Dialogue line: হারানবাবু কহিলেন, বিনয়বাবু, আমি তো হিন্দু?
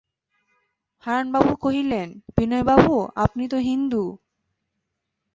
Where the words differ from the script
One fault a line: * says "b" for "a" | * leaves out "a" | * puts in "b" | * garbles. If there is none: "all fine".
* says "আপনি" for "আমি"